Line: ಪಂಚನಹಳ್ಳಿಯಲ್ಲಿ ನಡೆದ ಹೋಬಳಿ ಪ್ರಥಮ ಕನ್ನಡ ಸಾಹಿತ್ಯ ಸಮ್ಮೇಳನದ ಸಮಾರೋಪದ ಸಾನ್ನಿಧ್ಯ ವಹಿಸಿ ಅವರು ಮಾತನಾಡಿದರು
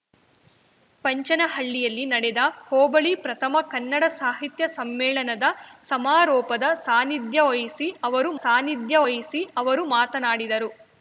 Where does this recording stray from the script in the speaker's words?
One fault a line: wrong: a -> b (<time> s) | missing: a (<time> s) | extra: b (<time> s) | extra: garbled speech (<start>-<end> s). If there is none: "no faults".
extra: ಸಾನ್ನಿಧ್ಯ ವಹಿಸಿ ಅವರು (8.4 s)